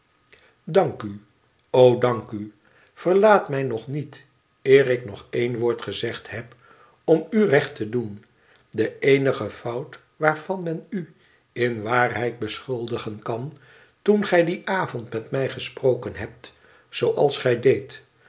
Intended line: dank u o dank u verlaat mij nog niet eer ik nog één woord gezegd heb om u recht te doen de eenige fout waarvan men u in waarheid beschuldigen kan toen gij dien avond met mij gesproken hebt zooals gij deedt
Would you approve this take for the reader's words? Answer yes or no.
yes